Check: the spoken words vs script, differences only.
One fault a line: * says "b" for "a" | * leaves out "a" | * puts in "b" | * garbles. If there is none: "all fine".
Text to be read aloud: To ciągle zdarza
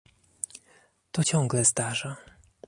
all fine